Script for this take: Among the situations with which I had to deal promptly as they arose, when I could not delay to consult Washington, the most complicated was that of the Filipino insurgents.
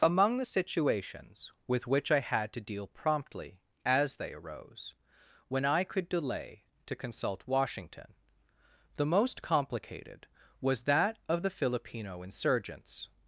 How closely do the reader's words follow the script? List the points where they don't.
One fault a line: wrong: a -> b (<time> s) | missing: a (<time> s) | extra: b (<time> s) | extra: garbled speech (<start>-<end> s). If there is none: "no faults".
missing: not (6.1 s)